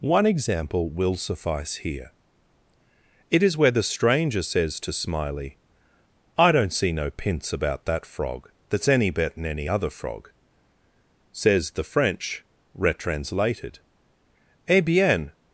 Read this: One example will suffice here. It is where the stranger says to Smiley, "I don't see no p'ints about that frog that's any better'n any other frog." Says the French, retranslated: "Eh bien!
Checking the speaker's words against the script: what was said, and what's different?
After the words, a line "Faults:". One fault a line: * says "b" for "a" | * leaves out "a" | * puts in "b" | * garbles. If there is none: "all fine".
One example will suffice here. It is where the stranger says to Smiley, "I don't see no p'ints about that frog that's any better'n any other frog." Says the French, retranslated: "Eh bien!
Faults:
all fine